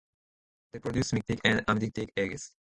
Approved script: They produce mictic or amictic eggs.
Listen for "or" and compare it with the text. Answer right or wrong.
wrong